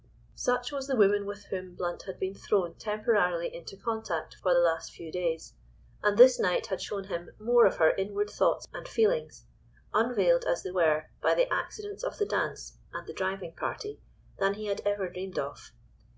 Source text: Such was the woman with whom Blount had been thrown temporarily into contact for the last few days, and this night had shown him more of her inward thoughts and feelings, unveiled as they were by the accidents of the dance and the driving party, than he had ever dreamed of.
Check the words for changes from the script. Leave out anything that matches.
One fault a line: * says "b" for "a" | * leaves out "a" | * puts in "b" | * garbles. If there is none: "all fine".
all fine